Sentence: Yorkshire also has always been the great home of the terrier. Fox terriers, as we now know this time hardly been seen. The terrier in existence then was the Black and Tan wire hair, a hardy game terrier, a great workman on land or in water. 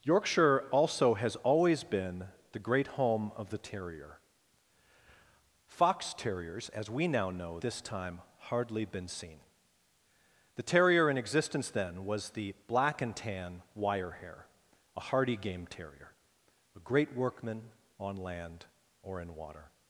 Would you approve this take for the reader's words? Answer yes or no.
yes